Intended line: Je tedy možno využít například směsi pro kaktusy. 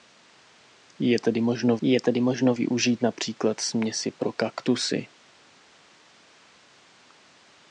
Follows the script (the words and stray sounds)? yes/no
no